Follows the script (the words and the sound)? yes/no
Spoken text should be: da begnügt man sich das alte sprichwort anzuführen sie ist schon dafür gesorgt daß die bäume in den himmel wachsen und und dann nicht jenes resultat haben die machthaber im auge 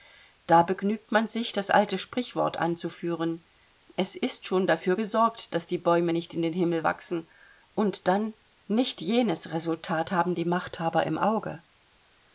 no